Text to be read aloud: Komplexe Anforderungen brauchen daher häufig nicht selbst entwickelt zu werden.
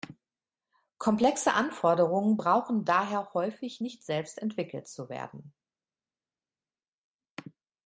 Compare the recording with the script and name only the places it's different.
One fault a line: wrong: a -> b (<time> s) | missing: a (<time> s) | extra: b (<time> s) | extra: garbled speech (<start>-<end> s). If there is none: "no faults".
no faults